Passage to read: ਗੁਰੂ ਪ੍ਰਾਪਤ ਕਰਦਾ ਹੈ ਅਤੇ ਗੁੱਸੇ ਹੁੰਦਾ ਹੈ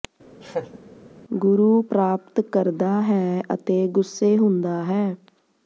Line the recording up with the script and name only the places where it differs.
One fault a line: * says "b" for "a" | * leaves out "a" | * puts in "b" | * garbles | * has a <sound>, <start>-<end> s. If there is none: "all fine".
* has a laugh, 0.4-0.8 s